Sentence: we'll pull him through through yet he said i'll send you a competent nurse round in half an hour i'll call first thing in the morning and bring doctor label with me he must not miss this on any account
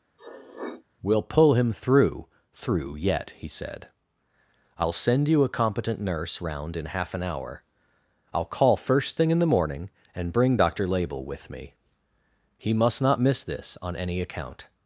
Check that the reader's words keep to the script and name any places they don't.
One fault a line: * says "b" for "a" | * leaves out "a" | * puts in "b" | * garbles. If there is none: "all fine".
all fine